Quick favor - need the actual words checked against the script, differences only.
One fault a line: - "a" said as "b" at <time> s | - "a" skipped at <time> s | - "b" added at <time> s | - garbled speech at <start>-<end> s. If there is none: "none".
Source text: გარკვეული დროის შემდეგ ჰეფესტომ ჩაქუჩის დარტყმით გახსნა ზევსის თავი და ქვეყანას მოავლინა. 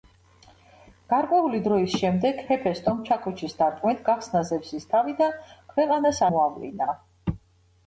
none